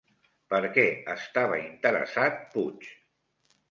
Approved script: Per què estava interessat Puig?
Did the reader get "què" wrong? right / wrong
right